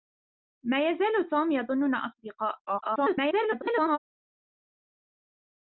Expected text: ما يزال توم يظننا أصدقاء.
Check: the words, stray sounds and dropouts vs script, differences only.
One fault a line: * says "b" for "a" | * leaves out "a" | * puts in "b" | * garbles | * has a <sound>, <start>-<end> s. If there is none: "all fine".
* garbles